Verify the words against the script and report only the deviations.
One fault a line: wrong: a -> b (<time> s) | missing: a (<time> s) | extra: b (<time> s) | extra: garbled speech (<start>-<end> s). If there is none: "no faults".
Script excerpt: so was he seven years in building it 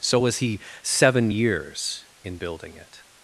no faults